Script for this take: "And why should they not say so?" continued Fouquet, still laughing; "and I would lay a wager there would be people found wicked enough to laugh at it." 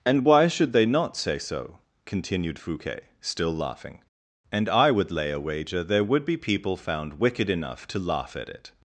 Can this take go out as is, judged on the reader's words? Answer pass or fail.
pass